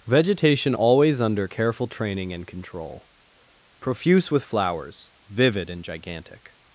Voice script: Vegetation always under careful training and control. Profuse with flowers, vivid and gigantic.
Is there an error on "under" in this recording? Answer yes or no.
no